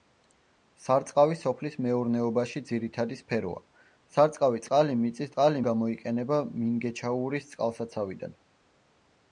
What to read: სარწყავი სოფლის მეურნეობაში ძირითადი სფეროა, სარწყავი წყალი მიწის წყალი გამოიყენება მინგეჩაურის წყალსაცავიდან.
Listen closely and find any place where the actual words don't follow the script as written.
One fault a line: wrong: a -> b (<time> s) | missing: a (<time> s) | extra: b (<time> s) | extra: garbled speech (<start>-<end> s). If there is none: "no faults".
no faults